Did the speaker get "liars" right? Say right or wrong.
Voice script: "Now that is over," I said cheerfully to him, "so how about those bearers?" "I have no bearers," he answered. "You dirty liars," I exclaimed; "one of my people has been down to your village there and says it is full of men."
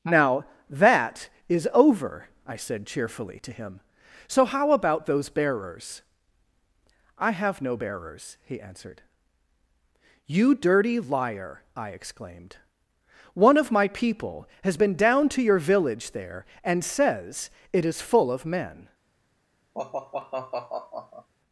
wrong